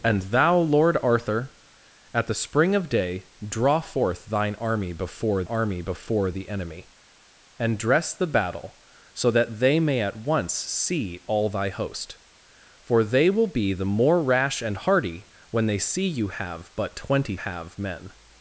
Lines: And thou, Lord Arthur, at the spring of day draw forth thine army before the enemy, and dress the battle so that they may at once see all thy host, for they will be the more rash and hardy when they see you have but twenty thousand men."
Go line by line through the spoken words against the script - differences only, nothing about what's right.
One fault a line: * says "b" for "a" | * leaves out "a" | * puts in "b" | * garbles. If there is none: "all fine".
* puts in "army before"
* says "have" for "thousand"